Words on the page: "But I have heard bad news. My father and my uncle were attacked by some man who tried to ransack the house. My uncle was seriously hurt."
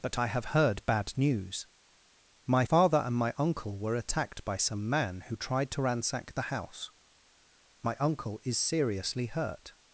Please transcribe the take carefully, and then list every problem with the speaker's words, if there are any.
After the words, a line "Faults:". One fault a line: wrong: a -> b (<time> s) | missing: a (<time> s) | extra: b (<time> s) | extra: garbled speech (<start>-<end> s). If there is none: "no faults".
"But I have heard bad news. My father and my uncle were attacked by some man who tried to ransack the house. My uncle is seriously hurt."
Faults:
wrong: was -> is (8.4 s)